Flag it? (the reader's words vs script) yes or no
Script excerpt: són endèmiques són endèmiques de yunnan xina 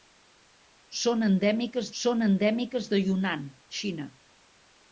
no